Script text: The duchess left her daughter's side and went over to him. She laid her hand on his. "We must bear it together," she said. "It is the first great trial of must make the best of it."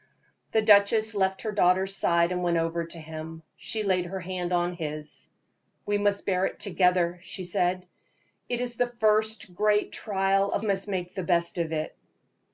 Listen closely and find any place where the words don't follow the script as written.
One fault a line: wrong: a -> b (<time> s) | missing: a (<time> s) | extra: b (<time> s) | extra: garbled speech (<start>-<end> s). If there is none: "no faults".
no faults